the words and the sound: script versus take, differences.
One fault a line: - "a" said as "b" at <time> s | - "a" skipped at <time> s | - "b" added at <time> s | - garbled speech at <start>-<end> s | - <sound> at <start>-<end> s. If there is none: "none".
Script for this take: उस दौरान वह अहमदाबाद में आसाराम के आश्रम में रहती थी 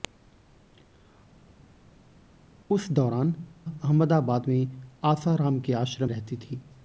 - "वह" skipped at 3.3 s
- "में" skipped at 6.1 s